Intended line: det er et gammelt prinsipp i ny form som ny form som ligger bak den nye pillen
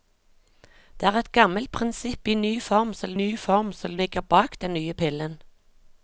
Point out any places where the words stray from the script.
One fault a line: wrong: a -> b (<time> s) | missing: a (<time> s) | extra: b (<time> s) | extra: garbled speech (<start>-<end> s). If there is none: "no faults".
no faults